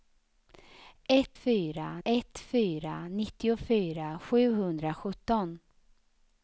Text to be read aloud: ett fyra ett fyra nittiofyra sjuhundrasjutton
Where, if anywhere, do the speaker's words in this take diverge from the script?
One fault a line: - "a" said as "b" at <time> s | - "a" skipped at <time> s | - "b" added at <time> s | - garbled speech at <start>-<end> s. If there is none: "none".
none